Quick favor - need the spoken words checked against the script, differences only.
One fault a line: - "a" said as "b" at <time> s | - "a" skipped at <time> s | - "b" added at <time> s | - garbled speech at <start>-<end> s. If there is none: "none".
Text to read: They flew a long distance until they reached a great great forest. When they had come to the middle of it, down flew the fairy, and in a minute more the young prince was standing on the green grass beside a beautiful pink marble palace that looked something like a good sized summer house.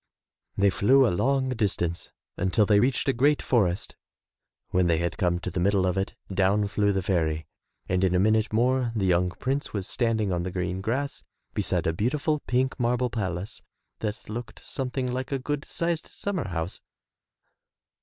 - "great" skipped at 3.4 s